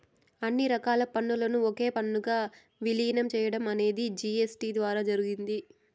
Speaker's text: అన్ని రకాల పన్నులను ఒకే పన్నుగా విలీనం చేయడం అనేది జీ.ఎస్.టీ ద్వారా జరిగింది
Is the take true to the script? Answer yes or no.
yes